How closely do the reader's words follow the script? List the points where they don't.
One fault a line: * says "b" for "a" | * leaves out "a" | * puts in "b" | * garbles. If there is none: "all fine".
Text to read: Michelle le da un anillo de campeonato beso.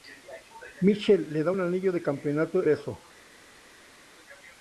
all fine